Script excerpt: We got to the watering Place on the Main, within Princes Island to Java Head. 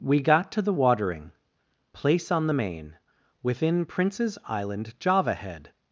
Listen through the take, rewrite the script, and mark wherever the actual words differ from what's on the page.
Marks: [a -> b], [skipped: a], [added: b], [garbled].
We got to the watering Place on the Main, within Princes Island [skipped: to] Java Head.